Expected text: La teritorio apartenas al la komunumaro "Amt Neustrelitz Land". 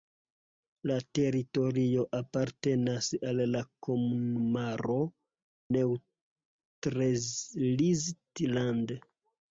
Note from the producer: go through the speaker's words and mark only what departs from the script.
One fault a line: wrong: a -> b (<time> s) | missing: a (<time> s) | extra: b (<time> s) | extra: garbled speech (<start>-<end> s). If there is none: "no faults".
missing: Amt (5.0 s)